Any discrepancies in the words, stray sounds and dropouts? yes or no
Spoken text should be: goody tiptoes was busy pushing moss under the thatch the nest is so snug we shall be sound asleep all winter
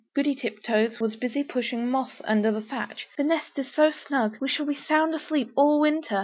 no